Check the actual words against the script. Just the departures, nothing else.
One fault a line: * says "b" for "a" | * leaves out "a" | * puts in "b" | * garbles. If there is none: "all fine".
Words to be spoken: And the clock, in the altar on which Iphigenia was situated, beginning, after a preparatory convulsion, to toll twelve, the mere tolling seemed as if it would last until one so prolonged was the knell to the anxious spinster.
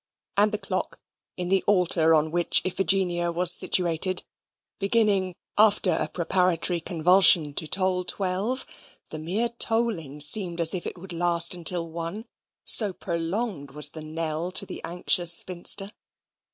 all fine